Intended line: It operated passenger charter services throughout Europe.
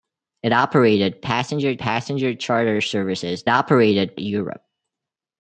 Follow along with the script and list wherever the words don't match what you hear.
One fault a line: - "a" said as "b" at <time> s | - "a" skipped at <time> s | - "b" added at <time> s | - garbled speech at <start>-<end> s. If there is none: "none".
- "passenger" added at 1.8 s
- "throughout" said as "operated" at 3.5 s